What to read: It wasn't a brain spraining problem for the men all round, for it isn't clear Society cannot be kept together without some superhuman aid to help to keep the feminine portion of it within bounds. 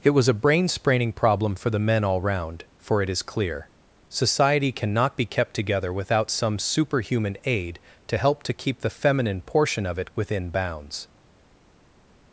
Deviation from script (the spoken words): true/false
true